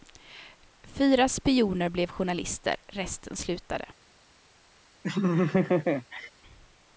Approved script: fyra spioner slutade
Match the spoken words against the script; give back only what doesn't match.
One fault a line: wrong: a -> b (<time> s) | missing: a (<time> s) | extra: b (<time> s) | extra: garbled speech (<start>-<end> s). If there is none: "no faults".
extra: blev journalister resten (1.9 s)